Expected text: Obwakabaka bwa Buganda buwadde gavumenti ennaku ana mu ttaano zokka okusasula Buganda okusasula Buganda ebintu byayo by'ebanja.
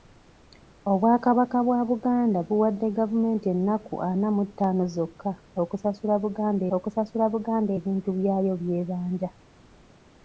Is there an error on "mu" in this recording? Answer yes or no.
no